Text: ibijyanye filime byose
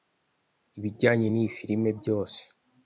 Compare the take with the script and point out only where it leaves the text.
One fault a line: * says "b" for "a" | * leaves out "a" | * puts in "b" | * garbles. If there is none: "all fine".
* puts in "n'iyi"